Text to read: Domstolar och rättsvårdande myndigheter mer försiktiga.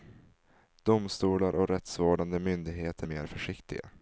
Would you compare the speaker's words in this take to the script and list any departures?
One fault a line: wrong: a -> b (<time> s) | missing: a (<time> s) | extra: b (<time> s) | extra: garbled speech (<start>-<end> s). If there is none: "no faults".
no faults